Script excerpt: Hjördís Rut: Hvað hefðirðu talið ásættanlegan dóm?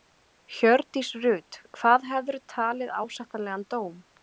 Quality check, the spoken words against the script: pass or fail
pass